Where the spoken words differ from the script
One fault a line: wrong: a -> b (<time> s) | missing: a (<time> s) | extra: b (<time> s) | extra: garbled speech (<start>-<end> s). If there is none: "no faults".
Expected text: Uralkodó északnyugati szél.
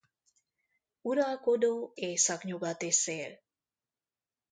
no faults